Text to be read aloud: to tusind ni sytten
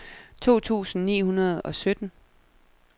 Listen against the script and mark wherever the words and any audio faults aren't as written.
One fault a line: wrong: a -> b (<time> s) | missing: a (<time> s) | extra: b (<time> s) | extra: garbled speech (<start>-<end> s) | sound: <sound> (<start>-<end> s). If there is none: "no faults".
extra: hundrede og (1.2 s)